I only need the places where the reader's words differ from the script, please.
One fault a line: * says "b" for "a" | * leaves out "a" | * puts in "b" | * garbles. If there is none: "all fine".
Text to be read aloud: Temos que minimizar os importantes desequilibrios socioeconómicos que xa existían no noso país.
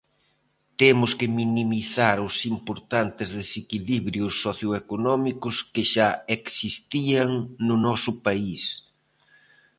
all fine